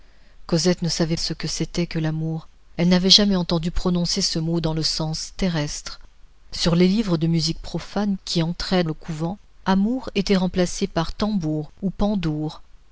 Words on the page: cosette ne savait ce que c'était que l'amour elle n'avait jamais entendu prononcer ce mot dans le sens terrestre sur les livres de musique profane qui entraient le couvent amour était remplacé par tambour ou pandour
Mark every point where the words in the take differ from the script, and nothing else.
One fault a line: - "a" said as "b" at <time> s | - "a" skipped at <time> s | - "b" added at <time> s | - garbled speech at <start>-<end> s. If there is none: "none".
none